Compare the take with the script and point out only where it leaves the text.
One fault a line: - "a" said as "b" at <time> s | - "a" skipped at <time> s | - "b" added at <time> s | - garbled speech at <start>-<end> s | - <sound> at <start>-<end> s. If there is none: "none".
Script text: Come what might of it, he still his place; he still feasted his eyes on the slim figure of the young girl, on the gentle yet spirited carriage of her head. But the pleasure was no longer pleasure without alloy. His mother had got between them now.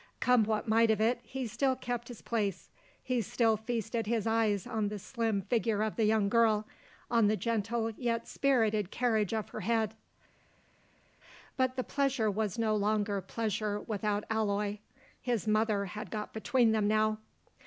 - "kept" added at 1.8 s